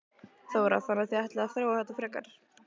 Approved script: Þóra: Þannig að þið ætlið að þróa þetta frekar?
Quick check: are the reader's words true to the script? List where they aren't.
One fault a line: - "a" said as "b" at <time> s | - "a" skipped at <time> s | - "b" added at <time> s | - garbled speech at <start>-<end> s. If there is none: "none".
none